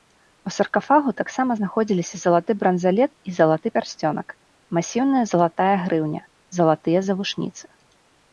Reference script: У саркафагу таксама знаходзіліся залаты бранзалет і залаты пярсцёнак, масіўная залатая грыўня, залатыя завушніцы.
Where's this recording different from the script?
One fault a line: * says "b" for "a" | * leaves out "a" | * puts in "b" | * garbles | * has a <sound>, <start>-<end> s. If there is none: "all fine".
all fine